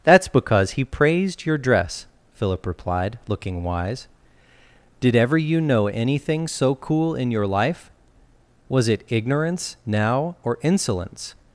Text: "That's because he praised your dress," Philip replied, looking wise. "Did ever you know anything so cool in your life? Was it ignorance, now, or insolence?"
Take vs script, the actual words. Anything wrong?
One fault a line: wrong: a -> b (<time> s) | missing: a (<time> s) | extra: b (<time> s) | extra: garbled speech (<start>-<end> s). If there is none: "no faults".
no faults